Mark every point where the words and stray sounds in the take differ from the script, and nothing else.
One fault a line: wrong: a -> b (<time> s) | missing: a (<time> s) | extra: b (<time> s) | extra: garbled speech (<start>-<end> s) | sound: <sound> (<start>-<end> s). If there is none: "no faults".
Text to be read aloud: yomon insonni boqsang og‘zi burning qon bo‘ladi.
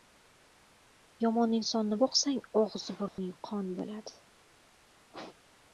sound: dropout (3.1-3.2 s)